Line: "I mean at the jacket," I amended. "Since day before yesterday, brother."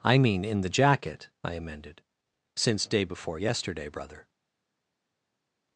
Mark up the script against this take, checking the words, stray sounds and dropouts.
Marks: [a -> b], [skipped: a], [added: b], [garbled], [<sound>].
"I mean [at -> in] the jacket," I amended. "Since day before yesterday, brother."